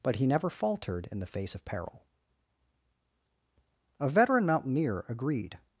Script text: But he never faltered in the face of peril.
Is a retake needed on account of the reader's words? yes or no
yes